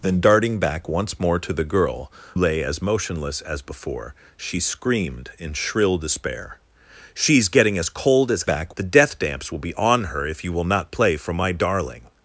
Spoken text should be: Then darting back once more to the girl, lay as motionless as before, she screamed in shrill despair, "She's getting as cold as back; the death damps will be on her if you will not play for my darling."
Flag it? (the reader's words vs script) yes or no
no